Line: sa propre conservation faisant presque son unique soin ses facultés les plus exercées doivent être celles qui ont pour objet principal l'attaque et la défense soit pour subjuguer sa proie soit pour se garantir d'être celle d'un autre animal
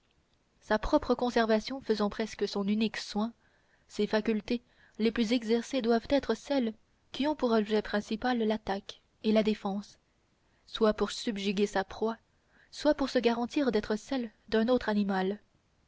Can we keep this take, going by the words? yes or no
yes